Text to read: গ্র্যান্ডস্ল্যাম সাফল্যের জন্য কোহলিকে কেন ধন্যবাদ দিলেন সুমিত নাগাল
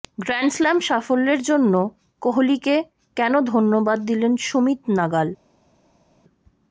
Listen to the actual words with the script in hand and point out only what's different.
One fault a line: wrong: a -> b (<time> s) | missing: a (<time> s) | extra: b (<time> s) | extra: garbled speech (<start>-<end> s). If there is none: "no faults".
no faults